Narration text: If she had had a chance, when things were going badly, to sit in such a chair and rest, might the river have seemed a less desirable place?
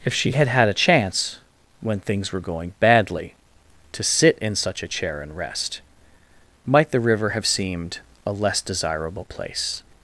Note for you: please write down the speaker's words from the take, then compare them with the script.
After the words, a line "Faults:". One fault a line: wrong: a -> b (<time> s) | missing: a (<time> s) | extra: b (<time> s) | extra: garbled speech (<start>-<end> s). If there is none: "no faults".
If she had had a chance, when things were going badly, to sit in such a chair and rest, might the river have seemed a less desirable place?
Faults:
no faults